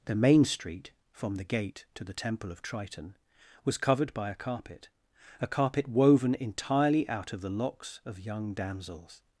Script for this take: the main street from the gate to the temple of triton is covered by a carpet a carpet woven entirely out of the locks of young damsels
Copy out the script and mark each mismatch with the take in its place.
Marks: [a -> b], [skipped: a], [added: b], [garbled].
the main street from the gate to the temple of triton [is -> was] covered by a carpet a carpet woven entirely out of the locks of young damsels